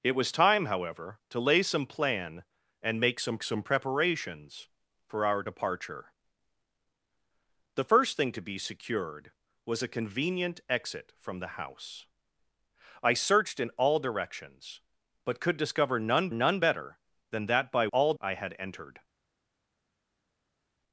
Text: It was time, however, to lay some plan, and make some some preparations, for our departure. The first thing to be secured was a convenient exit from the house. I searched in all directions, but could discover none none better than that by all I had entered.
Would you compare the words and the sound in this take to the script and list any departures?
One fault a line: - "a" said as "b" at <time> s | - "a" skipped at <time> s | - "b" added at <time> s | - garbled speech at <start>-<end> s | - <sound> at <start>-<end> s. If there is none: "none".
none